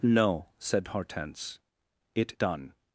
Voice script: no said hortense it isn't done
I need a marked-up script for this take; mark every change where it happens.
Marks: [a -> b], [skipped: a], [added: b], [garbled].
no said hortense it [skipped: isn't] done